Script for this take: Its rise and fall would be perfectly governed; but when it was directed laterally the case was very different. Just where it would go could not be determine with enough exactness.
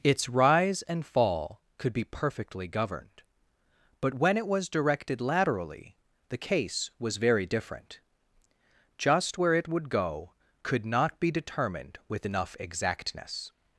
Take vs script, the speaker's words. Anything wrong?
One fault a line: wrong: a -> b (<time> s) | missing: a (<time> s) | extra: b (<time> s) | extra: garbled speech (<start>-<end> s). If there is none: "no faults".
wrong: would -> could (1.8 s)
wrong: determine -> determined (11.3 s)